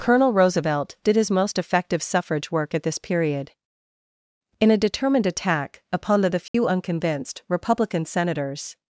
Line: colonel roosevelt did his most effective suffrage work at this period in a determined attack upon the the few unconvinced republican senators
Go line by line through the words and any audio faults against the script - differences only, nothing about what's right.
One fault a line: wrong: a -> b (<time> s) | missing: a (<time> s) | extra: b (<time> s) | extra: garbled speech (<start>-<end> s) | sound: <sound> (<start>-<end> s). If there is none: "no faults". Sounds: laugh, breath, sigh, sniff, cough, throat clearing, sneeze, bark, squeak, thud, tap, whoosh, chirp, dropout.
sound: dropout (6.5-6.5 s)